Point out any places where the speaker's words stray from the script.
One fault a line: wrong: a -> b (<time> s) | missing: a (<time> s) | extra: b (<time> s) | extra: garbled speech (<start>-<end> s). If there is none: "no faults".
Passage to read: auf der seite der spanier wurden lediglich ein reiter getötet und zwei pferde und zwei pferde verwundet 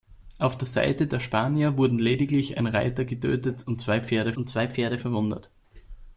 no faults